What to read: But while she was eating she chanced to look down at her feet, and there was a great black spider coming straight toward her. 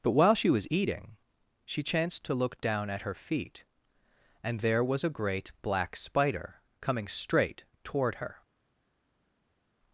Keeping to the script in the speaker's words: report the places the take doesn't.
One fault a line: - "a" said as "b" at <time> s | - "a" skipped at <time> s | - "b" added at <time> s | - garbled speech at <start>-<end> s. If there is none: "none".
none